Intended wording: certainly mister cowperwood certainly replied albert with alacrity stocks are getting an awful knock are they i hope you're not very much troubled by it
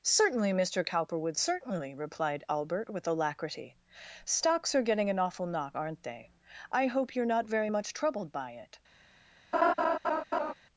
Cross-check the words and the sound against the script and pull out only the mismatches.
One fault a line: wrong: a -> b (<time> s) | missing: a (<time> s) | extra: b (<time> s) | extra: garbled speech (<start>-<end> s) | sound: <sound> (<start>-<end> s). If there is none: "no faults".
wrong: are -> aren't (5.7 s)
sound: laugh (9.5-10.5 s)